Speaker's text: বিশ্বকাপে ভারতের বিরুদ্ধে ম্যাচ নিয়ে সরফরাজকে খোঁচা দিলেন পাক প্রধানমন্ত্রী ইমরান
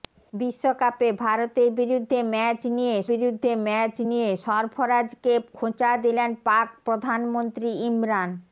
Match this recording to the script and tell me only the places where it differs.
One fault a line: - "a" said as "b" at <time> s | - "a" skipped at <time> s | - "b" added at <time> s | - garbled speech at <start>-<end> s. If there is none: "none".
- "বিরুদ্ধে ম্যাচ নিয়ে" added at 3.1 s